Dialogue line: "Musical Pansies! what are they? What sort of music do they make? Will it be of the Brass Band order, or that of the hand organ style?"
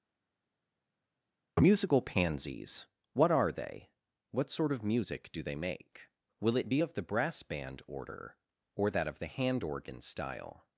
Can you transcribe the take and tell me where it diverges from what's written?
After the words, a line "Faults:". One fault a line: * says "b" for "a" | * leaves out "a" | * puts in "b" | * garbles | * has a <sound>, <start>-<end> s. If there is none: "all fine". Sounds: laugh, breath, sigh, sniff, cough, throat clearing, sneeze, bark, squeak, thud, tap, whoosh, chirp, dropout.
"Musical Pansies! what are they? What sort of music do they make? Will it be of the Brass Band order, or that of the hand organ style?"
Faults:
all fine